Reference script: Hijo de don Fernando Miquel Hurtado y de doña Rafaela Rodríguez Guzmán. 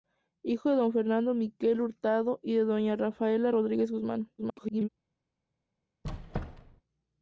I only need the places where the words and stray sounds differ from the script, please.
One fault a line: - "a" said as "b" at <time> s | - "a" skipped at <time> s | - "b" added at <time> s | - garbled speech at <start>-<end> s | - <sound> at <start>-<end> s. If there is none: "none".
- garbled speech at 4.4-4.9 s
- squeak at 6.0-6.8 s